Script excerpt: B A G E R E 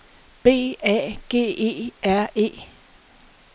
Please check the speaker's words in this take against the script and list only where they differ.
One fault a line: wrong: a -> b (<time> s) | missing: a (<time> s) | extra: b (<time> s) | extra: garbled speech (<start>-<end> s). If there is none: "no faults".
no faults